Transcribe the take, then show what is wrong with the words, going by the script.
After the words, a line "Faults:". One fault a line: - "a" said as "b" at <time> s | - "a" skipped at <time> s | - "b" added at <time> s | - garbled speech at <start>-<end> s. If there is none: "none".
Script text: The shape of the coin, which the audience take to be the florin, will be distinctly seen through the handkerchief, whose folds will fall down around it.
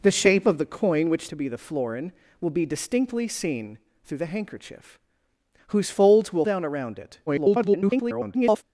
The shape of the coin, which to be the florin, will be distinctly seen through the handkerchief, whose folds will down around it. [garbled]
Faults:
- "the audience take" skipped at 1.3 s
- "fall" skipped at 6.4 s
- garbled speech at 7.3-8.6 s